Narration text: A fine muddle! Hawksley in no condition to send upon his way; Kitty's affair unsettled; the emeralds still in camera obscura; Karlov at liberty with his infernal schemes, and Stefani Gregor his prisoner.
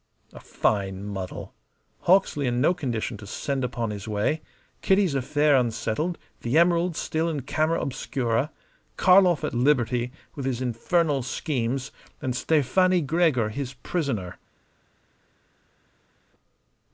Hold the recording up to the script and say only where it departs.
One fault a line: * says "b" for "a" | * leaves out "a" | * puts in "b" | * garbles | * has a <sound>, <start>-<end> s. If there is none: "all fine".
all fine